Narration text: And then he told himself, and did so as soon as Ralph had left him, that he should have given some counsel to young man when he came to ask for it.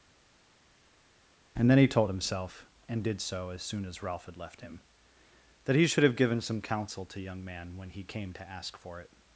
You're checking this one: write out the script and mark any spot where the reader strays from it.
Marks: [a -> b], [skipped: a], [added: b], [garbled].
And then he told himself, and did so as soon as Ralph had left him, that he should have given some counsel to young man when he came to ask for it.